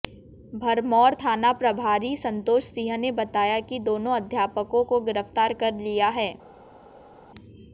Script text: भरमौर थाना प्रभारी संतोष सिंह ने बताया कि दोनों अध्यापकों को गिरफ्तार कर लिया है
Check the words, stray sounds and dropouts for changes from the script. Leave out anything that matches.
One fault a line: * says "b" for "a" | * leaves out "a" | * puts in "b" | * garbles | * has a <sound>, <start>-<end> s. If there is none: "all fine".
all fine